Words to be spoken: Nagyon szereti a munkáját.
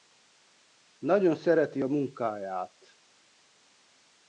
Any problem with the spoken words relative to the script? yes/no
no